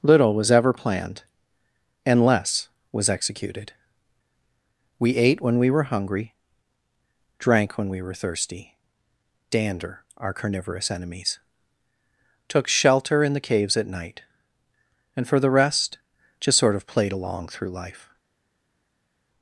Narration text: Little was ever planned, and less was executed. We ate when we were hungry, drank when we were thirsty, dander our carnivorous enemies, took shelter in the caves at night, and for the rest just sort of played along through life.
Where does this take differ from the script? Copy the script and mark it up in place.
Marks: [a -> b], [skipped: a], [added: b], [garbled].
Little was ever planned, and less was executed. We ate when we were hungry, drank when we were thirsty, dander our carnivorous enemies, took shelter in the caves at night, and for the rest just sort of played along through life.